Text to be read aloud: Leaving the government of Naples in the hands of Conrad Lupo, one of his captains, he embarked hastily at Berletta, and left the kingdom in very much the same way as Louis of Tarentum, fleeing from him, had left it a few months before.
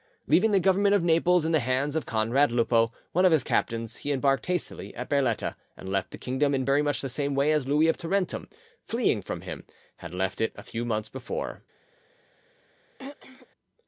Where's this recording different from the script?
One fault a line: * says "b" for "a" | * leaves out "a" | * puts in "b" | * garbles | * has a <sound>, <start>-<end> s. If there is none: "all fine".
* has a throat clearing, 13.0-13.5 s